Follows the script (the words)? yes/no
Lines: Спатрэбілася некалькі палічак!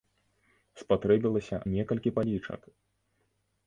yes